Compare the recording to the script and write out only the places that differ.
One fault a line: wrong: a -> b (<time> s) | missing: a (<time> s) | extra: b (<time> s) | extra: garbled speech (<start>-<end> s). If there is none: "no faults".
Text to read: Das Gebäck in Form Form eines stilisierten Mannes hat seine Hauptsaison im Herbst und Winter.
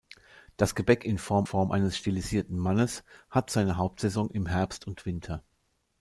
no faults